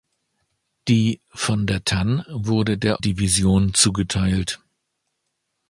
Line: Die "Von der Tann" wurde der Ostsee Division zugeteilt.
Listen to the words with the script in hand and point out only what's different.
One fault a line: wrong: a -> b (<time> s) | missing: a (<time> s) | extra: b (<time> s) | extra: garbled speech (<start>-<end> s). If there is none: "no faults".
missing: Ostsee (3.0 s)